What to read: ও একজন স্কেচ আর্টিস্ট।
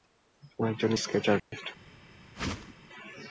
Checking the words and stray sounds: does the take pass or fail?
fail